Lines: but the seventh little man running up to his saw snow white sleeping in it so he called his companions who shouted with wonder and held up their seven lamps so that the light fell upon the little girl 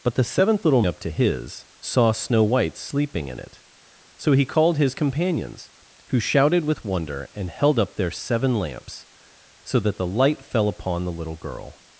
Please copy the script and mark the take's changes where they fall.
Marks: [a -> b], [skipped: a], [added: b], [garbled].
but the seventh little [skipped: man running] up to his saw snow white sleeping in it so he called his companions who shouted with wonder and held up their seven lamps so that the light fell upon the little girl